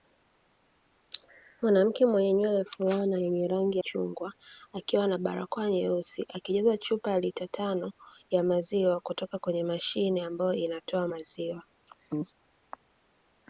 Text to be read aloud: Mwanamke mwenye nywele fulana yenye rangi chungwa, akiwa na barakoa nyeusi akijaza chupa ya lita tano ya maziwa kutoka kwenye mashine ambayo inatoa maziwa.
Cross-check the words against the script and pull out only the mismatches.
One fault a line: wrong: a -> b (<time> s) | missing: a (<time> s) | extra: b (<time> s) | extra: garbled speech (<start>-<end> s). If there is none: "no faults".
no faults